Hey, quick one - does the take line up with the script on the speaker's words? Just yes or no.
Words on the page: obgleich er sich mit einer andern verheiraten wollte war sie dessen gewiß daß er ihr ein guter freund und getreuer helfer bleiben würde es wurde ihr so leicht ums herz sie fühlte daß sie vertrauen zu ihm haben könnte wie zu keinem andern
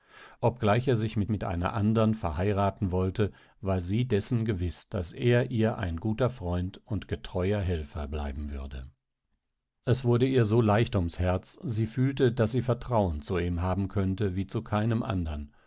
no